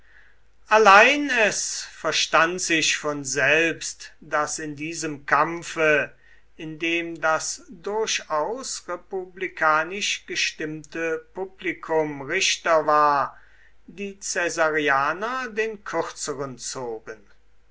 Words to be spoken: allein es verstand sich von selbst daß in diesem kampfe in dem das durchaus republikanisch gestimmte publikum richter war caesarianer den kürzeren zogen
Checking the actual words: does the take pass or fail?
fail